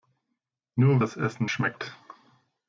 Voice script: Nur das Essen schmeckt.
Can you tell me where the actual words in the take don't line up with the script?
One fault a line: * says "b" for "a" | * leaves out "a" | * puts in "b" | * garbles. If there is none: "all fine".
all fine